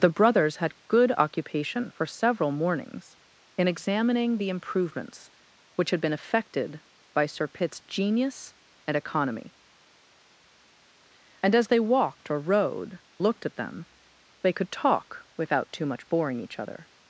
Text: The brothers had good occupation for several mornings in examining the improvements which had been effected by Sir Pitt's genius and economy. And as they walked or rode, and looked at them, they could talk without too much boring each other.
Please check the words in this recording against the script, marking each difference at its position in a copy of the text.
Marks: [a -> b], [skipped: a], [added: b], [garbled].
The brothers had good occupation for several mornings in examining the improvements which had been effected by Sir Pitt's genius and economy. And as they walked or rode, [skipped: and] looked at them, they could talk without too much boring each other.